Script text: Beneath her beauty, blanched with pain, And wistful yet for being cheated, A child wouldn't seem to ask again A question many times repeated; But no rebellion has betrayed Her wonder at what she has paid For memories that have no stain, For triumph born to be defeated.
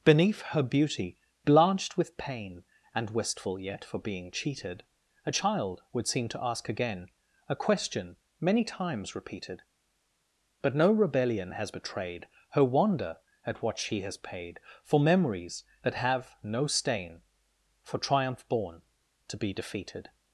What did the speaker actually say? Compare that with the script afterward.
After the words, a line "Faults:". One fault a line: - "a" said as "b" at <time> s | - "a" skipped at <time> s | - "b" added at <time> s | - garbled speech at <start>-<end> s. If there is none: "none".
Beneath her beauty, blanched with pain, And wistful yet for being cheated, A child would seem to ask again A question many times repeated; But no rebellion has betrayed Her wonder at what she has paid For memories that have no stain, For triumph born to be defeated.
Faults:
- "wouldn't" said as "would" at 5.9 s